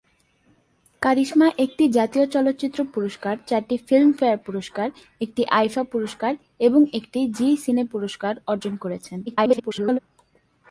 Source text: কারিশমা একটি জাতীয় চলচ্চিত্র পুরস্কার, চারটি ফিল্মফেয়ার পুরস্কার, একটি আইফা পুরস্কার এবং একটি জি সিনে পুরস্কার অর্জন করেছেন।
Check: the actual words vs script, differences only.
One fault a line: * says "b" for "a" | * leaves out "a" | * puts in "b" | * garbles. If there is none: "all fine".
* garbles